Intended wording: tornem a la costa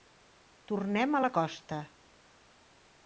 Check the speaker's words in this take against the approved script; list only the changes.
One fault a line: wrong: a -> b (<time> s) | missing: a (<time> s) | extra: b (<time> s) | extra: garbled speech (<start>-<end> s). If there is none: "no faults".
no faults